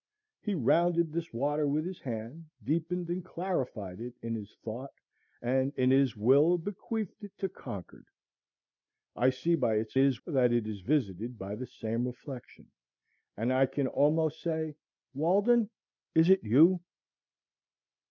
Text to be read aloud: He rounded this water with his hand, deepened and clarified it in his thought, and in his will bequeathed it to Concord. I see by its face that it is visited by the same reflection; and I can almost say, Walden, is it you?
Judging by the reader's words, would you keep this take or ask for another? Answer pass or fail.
fail